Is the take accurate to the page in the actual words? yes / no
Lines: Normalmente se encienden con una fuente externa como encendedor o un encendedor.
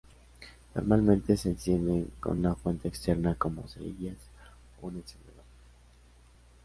no